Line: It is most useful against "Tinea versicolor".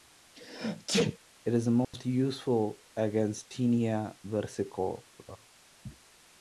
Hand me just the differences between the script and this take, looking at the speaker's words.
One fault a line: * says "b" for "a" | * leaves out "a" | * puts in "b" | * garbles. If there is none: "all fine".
all fine